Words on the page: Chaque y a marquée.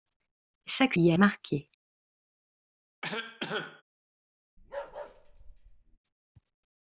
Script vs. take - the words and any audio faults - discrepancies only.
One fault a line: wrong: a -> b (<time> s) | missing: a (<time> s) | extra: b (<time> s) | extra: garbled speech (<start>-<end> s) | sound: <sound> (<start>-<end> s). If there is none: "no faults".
sound: cough (3.0-3.8 s)
sound: bark (4.6-6.0 s)